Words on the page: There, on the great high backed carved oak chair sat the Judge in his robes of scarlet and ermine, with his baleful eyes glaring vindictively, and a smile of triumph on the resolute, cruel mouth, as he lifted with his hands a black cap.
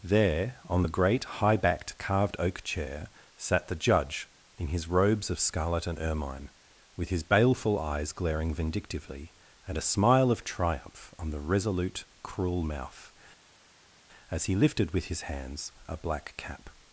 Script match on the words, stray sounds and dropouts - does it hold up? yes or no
yes